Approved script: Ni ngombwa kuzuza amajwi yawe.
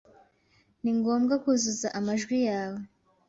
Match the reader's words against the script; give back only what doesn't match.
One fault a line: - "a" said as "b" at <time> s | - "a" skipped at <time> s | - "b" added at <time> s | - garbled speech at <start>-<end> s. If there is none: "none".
none